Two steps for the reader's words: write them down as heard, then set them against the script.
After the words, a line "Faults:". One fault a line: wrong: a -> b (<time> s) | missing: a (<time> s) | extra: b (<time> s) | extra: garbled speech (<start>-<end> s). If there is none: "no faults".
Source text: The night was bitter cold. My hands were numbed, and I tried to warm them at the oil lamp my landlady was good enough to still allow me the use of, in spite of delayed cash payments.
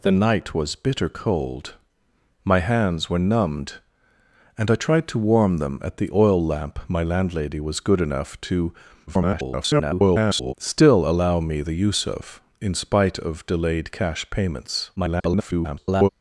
The night was bitter cold. My hands were numbed, and I tried to warm them at the oil lamp my landlady was good enough to [garbled] still allow me the use of, in spite of delayed cash payments. [garbled]
Faults:
extra: garbled speech (9.1-10.5 s)
extra: garbled speech (15.0-16.1 s)